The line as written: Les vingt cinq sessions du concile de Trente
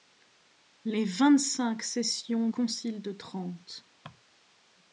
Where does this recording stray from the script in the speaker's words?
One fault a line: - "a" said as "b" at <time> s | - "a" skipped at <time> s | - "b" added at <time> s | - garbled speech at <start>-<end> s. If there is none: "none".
- "du" skipped at 2.5 s